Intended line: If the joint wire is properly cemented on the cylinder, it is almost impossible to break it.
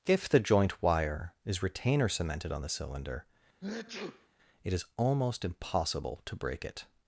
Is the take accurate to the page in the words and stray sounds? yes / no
no